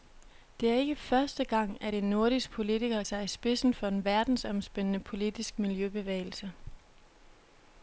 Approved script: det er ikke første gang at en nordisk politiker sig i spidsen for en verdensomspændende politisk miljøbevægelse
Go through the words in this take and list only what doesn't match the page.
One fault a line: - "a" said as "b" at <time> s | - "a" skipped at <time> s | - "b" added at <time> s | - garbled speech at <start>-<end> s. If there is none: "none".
none